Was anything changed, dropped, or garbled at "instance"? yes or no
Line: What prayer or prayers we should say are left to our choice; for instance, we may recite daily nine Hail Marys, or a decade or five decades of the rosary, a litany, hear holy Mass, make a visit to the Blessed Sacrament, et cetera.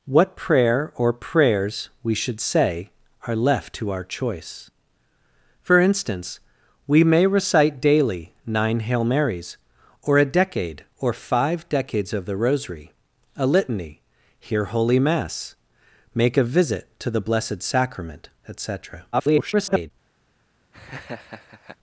no